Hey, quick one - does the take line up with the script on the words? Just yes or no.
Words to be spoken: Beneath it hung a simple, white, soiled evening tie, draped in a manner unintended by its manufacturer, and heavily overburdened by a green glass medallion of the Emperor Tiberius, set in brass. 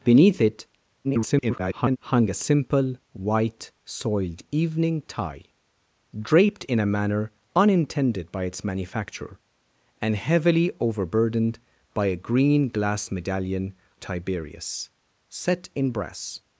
no